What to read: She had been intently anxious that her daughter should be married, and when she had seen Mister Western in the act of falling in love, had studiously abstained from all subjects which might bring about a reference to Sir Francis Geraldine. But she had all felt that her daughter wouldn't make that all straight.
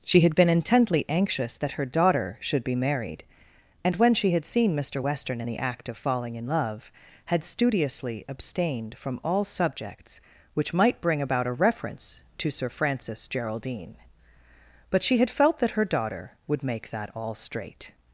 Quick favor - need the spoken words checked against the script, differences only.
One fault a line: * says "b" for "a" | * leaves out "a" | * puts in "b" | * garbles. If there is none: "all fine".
* leaves out "all"
* says "would" for "wouldn't"